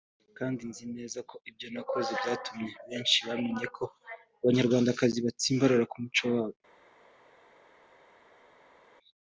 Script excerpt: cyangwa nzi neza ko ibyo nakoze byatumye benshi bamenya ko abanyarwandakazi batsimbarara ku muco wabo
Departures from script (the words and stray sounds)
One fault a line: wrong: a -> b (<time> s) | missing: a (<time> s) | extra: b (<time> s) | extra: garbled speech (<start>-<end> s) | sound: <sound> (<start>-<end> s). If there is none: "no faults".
wrong: cyangwa -> kandi (0.4 s)